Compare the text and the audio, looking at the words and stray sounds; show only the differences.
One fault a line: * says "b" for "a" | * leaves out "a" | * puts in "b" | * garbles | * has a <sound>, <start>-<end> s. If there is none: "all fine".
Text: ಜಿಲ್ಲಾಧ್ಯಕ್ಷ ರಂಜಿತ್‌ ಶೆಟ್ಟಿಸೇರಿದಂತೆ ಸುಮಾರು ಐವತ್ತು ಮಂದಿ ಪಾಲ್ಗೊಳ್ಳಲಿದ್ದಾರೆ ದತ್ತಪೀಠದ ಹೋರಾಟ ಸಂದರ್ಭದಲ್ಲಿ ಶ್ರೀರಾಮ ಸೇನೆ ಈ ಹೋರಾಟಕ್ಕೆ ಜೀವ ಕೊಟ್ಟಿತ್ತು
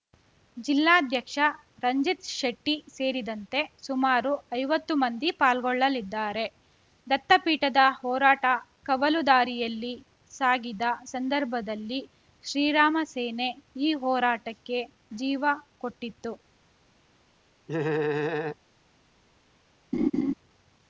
* puts in "ಕವಲು ದಾರಿಯಲ್ಲಿ ಸಾಗಿದ"
* has a laugh, 17.7-18.6 s
* has a laugh, 19.9-20.3 s